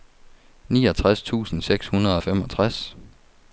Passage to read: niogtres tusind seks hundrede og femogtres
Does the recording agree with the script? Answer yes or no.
yes